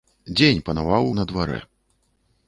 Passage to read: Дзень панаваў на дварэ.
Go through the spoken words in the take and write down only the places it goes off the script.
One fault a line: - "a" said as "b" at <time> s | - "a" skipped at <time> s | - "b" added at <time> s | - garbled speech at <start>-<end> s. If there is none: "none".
none